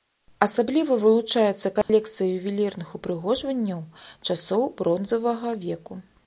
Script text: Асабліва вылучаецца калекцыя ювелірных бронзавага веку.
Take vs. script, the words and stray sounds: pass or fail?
fail